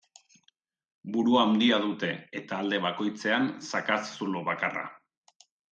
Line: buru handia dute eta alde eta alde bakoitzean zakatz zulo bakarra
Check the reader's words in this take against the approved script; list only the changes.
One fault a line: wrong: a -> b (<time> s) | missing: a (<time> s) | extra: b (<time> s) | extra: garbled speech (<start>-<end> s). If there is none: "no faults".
missing: eta alde (2.8 s)